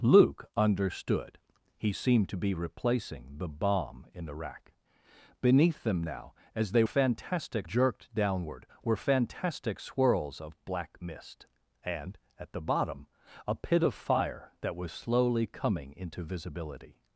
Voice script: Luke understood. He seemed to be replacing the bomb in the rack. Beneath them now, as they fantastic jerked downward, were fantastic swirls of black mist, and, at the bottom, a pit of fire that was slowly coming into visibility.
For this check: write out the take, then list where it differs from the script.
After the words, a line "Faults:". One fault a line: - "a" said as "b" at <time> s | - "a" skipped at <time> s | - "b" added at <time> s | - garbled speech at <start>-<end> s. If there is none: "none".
Luke understood. He seemed to be replacing the bomb in the rack. Beneath them now, as they fantastic jerked downward, were fantastic swirls of black mist, and, at the bottom, a pit of fire that was slowly coming into visibility.
Faults:
none